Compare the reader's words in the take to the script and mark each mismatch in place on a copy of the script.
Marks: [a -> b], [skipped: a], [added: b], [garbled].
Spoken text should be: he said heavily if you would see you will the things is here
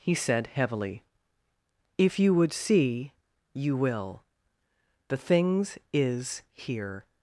he said heavily if you would see you will the things is here